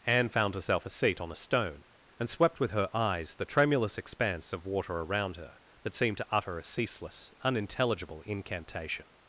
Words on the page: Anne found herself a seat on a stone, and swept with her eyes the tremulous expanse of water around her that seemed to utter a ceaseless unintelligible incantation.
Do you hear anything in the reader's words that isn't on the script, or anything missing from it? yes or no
no